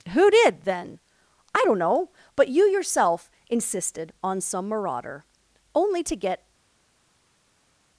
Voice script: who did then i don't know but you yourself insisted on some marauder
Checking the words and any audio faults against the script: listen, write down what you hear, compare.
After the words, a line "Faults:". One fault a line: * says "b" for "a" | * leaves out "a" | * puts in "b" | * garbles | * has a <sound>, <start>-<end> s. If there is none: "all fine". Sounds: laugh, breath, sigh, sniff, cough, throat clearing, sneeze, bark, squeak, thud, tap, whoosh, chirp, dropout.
who did then i don't know but you yourself insisted on some marauder only to get
Faults:
* puts in "only to get"